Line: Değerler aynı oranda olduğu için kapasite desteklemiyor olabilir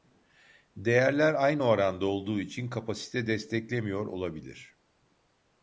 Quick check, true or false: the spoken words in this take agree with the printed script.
true